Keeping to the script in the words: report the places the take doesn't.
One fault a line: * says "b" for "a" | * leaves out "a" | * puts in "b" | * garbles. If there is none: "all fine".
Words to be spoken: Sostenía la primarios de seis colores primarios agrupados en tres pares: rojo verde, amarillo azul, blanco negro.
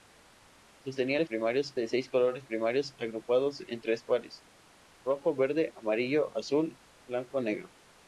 all fine